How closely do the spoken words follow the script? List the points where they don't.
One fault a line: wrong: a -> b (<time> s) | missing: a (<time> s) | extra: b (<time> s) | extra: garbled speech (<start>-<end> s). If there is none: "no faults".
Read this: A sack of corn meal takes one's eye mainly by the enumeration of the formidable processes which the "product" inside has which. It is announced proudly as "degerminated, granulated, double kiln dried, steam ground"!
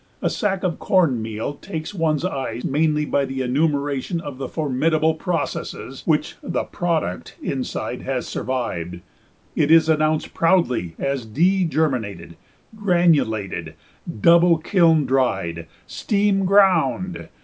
wrong: which -> survived (8.3 s)